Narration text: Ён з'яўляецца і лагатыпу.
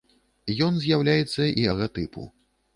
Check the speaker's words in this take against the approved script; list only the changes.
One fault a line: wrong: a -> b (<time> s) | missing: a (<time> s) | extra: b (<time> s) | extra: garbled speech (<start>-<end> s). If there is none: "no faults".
no faults